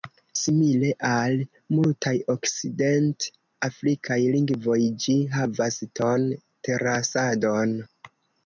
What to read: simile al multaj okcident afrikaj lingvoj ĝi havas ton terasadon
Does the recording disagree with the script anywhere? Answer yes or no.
no